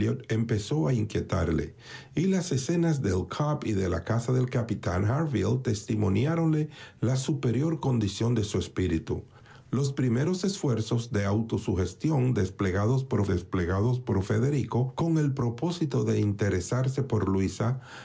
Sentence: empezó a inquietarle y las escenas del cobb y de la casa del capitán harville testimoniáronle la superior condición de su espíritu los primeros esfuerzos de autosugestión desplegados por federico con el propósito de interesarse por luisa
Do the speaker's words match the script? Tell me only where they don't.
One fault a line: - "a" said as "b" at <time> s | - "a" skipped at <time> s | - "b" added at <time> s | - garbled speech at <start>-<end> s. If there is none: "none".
- "desplegados por" added at 13.2 s